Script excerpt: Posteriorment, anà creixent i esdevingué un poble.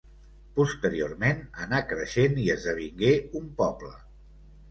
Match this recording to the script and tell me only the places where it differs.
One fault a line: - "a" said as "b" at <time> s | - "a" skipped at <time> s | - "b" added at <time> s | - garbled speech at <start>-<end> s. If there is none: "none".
none